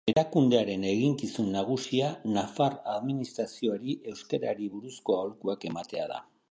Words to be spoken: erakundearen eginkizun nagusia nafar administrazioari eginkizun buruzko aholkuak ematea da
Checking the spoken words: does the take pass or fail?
fail